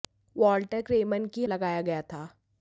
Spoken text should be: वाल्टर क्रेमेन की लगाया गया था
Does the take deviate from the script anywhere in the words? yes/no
no